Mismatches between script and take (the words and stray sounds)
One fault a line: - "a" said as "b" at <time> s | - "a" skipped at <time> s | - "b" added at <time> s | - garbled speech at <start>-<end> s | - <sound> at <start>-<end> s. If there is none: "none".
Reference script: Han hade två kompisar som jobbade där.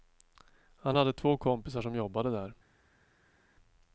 none